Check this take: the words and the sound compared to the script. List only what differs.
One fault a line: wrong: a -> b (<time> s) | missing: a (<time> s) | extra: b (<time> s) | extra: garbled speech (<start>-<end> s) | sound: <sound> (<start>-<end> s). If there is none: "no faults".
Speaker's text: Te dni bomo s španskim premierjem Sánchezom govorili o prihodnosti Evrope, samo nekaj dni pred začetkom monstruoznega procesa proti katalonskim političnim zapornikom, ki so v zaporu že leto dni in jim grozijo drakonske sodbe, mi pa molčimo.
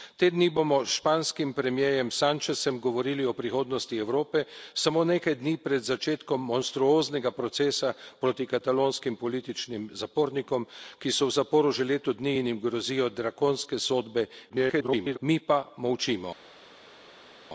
extra: garbled speech (14.5-15.2 s)